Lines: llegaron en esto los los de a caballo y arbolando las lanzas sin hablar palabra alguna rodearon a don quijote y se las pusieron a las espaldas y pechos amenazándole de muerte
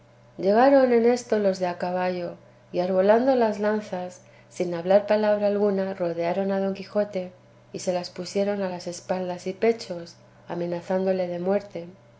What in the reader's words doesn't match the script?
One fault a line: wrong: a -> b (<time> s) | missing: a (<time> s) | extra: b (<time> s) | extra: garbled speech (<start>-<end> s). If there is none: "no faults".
missing: los (1.6 s)